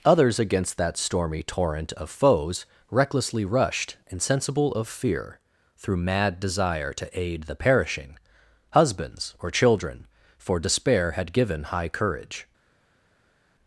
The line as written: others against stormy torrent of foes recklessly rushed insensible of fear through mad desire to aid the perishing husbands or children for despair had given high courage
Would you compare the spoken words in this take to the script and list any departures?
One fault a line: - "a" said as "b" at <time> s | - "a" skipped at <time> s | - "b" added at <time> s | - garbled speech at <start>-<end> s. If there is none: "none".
- "that" added at 0.8 s